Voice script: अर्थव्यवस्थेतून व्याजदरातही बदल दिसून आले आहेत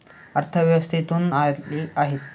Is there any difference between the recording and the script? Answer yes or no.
yes